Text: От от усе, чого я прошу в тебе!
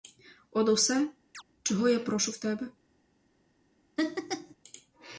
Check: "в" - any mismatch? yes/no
no